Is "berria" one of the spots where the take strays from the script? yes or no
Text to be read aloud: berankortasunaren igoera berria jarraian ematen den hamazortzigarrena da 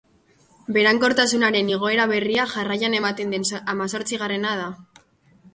no